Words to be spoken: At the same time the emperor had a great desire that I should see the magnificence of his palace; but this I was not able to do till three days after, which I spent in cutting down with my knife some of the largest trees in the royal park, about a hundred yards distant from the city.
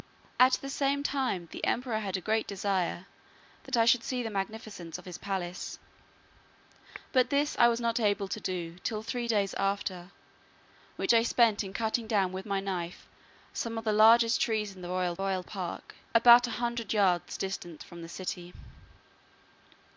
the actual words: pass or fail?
fail